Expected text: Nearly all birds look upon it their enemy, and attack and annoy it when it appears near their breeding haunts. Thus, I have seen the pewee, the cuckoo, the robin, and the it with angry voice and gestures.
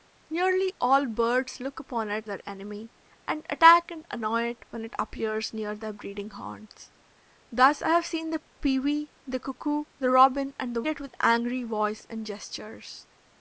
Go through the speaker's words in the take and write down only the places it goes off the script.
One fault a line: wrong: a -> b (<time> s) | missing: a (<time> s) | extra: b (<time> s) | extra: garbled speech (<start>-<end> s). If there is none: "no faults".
no faults